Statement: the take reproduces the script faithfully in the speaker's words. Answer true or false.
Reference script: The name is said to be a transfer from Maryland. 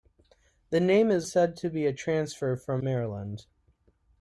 true